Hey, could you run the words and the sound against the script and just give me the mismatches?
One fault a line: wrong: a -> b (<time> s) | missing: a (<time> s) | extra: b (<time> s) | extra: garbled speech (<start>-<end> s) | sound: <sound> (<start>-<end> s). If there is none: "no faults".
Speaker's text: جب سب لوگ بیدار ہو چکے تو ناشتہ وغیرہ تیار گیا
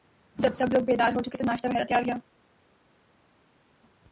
no faults